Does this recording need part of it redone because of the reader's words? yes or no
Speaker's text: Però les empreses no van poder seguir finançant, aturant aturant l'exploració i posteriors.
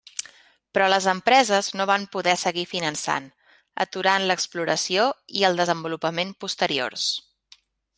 yes